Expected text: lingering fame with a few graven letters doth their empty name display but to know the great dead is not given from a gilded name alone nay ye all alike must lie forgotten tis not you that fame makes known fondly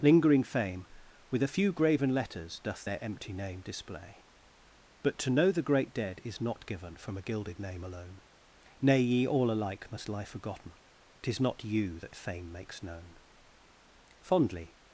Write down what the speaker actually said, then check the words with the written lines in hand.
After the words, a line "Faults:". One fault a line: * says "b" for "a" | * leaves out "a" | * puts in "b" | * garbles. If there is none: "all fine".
lingering fame with a few graven letters doth their empty name display but to know the great dead is not given from a gilded name alone nay ye all alike must lie forgotten tis not you that fame makes known fondly
Faults:
all fine